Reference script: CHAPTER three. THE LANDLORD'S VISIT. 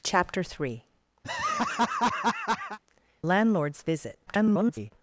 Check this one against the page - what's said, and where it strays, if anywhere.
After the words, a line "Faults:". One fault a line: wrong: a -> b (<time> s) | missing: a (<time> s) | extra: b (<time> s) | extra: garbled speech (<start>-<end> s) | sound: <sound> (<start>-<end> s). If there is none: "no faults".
CHAPTER three. LANDLORD'S VISIT. [garbled]
Faults:
missing: THE (0.8 s)
sound: laugh (1.2-2.8 s)
extra: garbled speech (4.3-4.9 s)